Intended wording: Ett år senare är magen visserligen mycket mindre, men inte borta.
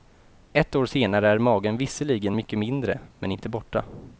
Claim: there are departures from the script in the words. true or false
false